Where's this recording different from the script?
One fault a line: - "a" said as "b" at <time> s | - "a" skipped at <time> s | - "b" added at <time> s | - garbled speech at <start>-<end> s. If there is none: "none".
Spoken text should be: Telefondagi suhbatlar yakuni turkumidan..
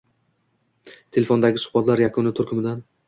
none